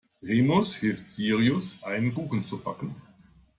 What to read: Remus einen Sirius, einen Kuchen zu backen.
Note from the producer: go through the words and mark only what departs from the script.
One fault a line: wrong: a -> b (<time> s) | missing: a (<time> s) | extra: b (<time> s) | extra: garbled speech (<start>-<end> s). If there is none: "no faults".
wrong: einen -> hilft (0.7 s)